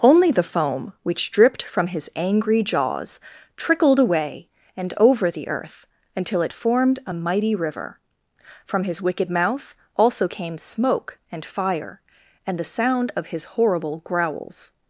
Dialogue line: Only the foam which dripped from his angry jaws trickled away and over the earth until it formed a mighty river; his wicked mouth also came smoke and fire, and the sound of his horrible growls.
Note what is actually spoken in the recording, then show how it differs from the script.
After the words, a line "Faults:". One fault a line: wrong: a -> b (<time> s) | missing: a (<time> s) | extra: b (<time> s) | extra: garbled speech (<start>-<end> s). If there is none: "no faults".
Only the foam which dripped from his angry jaws trickled away and over the earth until it formed a mighty river; from his wicked mouth also came smoke and fire, and the sound of his horrible growls.
Faults:
extra: from (8.6 s)